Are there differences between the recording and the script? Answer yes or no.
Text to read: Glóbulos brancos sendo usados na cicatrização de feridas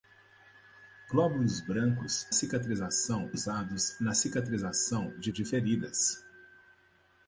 yes